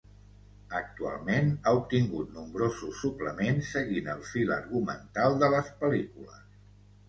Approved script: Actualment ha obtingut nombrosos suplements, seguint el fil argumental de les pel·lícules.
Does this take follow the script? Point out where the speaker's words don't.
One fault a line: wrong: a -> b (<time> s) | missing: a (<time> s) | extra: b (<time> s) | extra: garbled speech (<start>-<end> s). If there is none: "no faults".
no faults